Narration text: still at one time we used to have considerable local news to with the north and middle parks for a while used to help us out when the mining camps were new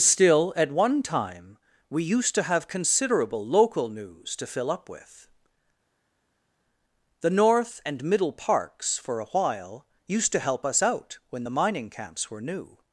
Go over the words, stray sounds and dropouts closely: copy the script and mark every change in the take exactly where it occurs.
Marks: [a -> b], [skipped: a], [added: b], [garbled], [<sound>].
still at one time we used to have considerable local news to [added: fill up] with the north and middle parks for a while used to help us out when the mining camps were new